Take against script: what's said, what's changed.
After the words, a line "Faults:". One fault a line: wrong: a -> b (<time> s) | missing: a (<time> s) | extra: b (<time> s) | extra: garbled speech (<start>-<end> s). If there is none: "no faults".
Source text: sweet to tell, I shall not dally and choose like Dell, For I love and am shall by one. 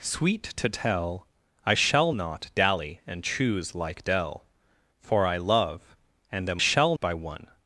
sweet to tell, I shall not dally and choose like Dell, For I love and am shall by one.
Faults:
no faults